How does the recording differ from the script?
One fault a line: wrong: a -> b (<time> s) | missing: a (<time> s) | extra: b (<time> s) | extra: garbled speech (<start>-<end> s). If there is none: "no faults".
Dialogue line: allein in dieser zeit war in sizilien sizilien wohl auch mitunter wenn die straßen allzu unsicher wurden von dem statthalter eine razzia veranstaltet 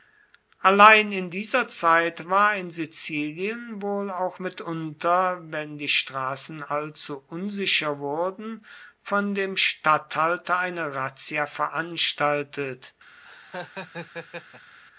missing: sizilien (3.8 s)